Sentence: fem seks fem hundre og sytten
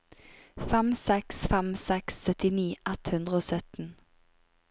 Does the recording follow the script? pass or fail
fail